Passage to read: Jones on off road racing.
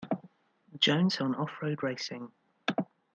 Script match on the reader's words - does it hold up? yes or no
yes